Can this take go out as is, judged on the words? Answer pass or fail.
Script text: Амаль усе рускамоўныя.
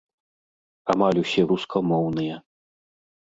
pass